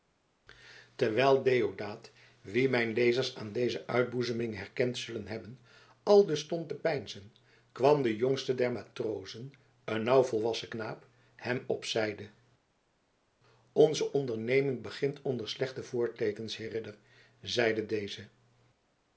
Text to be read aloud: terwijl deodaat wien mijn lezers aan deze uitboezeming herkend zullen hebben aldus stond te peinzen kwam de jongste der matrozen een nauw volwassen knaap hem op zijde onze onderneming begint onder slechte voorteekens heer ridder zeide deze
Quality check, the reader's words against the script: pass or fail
pass